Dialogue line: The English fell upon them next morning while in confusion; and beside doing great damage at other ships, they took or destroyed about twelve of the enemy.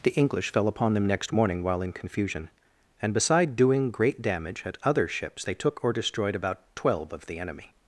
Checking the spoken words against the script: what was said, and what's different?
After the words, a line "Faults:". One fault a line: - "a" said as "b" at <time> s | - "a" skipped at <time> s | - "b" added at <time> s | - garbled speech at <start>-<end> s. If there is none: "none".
The English fell upon them next morning while in confusion; and beside doing great damage at other ships, they took or destroyed about twelve of the enemy.
Faults:
none